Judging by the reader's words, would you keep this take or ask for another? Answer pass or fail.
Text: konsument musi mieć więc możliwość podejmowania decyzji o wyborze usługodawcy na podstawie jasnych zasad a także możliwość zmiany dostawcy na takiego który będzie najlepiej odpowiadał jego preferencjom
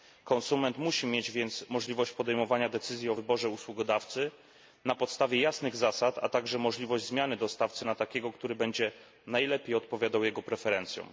pass